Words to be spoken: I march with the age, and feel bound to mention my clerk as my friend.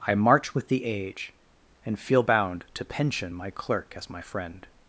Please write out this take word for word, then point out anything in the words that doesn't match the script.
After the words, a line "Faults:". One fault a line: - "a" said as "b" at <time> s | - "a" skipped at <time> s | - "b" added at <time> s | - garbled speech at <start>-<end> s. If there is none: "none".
I march with the age, and feel bound to pension my clerk as my friend.
Faults:
- "mention" said as "pension" at 2.8 s